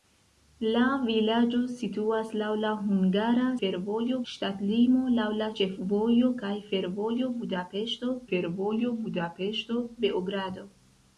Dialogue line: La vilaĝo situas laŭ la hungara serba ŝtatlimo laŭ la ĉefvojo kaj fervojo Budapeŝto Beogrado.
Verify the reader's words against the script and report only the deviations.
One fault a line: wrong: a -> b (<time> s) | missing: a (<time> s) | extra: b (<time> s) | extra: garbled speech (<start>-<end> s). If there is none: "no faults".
wrong: serba -> fervojo (3.6 s)
extra: fervojo Budapeŝto (8.3 s)